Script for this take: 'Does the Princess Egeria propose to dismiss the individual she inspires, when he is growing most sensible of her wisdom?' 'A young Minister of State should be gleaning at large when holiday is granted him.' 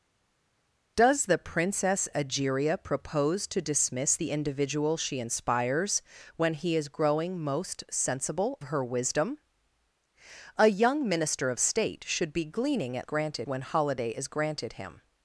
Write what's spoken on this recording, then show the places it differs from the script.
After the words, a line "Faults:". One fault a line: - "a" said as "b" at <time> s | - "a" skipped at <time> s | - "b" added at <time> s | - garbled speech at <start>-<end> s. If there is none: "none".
'Does the Princess Egeria propose to dismiss the individual she inspires, when he is growing most sensible her wisdom?' 'A young Minister of State should be gleaning at granted when holiday is granted him.'
Faults:
- "of" skipped at 8.6 s
- "large" said as "granted" at 13.0 s